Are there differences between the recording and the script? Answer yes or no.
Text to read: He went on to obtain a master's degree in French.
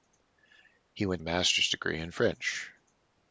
yes